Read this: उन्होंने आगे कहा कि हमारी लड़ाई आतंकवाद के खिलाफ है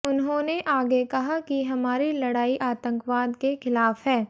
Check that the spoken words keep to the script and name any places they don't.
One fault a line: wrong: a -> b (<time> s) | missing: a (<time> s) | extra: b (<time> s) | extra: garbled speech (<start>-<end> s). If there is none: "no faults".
no faults